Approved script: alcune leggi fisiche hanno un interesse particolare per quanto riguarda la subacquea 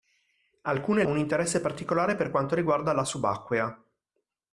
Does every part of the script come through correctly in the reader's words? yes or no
no